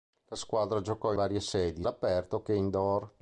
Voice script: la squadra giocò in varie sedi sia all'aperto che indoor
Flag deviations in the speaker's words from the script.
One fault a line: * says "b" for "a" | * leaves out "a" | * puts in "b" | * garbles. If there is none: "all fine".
* leaves out "in"
* leaves out "sia"